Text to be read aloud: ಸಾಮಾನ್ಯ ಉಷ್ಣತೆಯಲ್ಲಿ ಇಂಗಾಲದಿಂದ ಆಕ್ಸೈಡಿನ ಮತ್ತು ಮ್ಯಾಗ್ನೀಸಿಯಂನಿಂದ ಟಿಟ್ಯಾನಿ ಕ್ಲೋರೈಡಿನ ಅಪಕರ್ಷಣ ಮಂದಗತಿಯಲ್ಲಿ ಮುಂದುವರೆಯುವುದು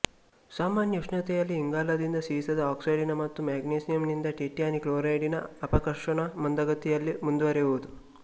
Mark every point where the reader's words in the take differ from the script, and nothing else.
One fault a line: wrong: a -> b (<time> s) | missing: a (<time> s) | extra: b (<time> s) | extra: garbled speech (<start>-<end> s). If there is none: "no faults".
extra: ಸೀಸದ (2.3 s)